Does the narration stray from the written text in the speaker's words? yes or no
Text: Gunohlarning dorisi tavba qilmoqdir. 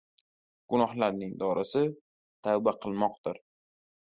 no